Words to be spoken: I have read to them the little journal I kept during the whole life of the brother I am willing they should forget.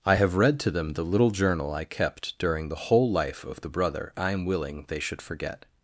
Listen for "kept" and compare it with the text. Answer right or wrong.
right